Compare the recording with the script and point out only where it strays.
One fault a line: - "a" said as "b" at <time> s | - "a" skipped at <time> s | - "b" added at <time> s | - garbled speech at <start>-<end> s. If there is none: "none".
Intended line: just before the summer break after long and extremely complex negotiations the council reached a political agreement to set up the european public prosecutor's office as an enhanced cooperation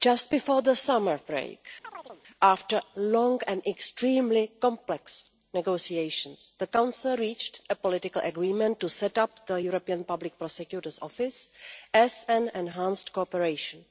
none